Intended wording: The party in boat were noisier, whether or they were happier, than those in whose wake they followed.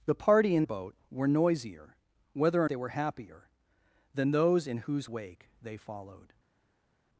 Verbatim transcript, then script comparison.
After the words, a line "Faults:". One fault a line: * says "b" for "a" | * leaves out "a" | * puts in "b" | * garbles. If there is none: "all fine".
The party in boat were noisier, whether or they were happier, than those in whose wake they followed.
Faults:
all fine